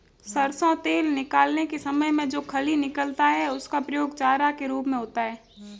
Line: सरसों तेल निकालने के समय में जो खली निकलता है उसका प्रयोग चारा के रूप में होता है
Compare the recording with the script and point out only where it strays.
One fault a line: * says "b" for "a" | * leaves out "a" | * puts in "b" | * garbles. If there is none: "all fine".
all fine